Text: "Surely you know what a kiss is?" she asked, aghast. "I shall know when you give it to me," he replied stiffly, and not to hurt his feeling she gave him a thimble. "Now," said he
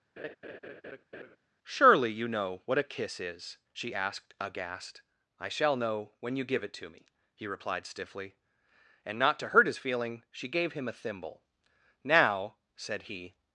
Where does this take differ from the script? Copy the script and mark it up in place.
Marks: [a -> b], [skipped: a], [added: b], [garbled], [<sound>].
[laugh] "Surely you know what a kiss is?" she asked, aghast. "I shall know when you give it to me," he replied stiffly, and not to hurt his feeling she gave him a thimble. "Now," said he